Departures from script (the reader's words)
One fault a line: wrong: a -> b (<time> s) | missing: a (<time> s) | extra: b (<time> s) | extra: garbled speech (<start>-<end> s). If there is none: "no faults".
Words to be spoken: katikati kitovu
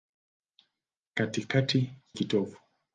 no faults